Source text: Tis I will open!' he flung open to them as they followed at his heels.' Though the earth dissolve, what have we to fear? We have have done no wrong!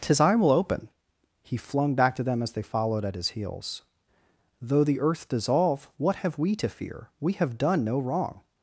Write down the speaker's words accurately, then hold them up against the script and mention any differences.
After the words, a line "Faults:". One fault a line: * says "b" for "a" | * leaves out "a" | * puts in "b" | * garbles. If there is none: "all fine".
Tis I will open!' he flung back to them as they followed at his heels.' Though the earth dissolve, what have we to fear? We have done no wrong!
Faults:
* says "back" for "open"
* leaves out "have"